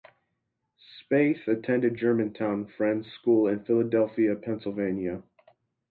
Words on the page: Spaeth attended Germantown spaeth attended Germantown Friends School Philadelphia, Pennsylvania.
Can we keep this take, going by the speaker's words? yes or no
no